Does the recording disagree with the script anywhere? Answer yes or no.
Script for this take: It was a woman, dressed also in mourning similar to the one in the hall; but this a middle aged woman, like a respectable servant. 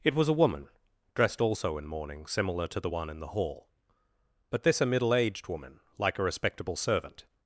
no